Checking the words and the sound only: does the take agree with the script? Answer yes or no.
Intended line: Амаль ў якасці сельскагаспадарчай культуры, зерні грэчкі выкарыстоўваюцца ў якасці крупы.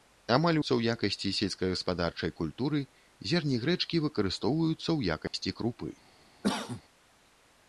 no